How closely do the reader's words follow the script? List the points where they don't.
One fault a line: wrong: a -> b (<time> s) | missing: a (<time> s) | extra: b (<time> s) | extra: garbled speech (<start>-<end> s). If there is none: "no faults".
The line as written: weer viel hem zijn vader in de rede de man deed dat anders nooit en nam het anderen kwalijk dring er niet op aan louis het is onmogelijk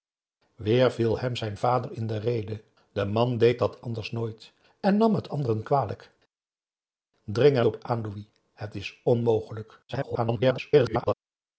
missing: niet (7.7 s)
extra: garbled speech (9.9-11.1 s)